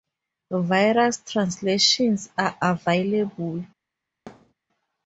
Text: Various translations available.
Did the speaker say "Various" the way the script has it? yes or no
yes